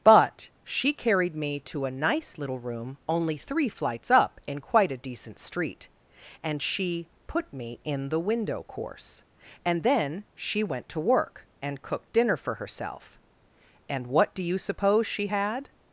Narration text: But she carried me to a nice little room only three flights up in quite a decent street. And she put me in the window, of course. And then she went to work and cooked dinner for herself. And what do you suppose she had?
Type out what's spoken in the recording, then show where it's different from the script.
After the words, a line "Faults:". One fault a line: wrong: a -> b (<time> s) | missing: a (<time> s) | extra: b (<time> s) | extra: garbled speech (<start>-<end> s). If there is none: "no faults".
But she carried me to a nice little room only three flights up in quite a decent street. And she put me in the window, course. And then she went to work and cooked dinner for herself. And what do you suppose she had?
Faults:
missing: of (8.6 s)